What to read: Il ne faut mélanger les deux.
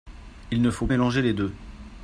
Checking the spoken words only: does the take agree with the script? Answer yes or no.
yes